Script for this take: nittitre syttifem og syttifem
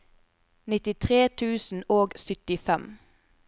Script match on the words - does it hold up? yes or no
no